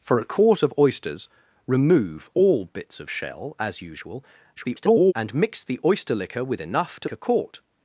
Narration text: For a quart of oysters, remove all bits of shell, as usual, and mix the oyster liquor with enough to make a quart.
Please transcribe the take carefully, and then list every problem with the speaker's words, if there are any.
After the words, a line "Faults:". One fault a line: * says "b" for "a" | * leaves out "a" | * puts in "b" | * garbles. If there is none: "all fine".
For a quart of oysters, remove all bits of shell, as usual, [garbled] and mix the oyster liquor with enough to a quart.
Faults:
* garbles
* leaves out "make"